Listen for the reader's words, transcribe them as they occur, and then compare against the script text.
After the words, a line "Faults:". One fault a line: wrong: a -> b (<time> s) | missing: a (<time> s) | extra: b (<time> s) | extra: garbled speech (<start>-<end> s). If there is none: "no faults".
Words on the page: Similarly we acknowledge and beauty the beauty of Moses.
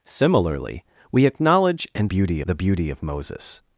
Similarly we acknowledge and beauty the beauty of Moses.
Faults:
no faults